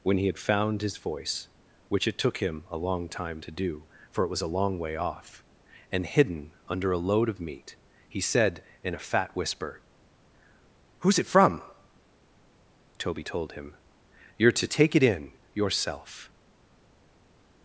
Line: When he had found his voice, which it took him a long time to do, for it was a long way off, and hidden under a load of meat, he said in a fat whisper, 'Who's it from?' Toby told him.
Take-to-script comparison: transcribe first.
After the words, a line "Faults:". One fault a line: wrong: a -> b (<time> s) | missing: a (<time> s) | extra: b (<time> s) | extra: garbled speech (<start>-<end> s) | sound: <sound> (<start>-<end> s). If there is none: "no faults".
When he had found his voice, which it took him a long time to do, for it was a long way off, and hidden under a load of meat, he said in a fat whisper, 'Who's it from?' Toby told him. 'You're to take it in, yourself
Faults:
extra: You're to take it in yourself (14.4 s)